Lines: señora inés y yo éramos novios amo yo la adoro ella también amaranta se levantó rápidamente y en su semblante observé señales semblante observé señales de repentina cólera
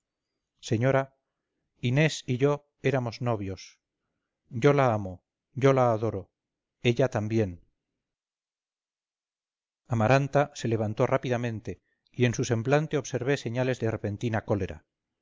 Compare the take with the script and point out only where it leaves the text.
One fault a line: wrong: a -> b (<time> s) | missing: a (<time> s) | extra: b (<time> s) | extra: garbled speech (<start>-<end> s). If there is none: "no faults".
extra: yo la (4.5 s)
missing: semblante observé señales (13.8 s)